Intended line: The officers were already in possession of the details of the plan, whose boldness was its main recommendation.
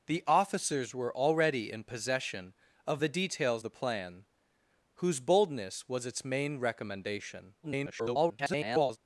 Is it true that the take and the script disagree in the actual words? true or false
true